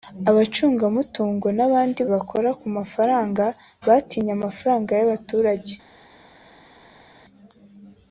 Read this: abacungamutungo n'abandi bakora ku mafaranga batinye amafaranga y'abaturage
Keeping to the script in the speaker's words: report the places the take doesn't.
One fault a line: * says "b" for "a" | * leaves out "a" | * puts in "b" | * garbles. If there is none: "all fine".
all fine